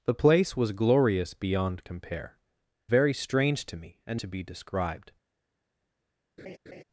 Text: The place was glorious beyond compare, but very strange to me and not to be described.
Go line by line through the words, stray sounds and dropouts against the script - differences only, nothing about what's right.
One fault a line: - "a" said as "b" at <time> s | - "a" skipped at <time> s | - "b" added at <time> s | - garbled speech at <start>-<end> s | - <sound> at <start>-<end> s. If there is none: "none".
- "but" skipped at 2.4 s
- "not" skipped at 4.2 s
- laugh at 6.4-6.8 s